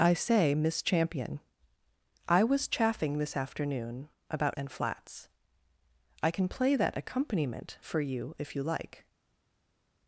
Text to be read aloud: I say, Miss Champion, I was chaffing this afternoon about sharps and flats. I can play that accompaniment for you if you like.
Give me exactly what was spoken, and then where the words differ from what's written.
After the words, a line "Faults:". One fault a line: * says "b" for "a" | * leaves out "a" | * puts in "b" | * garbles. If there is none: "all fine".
I say, Miss Champion, I was chaffing this afternoon about and flats. I can play that accompaniment for you if you like.
Faults:
* leaves out "sharps"